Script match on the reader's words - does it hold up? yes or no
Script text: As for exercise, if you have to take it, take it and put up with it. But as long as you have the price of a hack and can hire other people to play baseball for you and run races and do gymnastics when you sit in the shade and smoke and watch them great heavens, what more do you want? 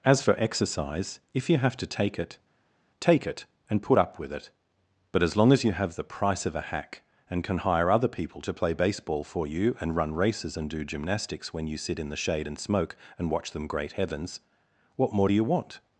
yes